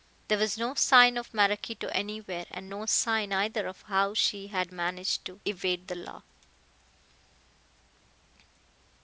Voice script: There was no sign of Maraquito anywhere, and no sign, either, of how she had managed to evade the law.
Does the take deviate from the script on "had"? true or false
false